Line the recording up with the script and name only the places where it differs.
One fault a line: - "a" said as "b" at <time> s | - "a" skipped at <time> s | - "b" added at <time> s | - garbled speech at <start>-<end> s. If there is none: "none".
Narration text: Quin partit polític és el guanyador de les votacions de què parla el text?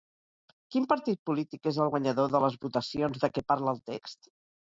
none